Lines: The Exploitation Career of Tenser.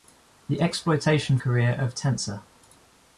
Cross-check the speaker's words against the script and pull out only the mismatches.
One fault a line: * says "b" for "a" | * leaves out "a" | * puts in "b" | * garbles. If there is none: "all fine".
all fine